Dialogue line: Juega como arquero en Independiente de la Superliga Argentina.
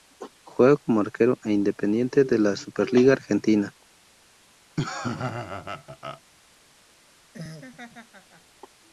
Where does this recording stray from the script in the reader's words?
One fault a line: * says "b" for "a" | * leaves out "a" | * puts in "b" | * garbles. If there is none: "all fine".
all fine